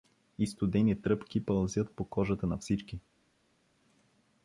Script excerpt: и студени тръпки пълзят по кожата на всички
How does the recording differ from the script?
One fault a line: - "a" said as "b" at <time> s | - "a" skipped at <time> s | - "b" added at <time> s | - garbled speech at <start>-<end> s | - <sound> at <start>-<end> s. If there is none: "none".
none